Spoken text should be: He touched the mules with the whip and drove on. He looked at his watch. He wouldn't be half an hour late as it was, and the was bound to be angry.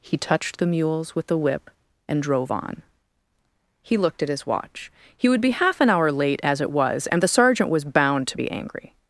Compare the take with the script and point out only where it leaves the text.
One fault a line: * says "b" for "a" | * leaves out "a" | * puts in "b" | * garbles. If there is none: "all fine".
* says "would" for "wouldn't"
* puts in "sergeant"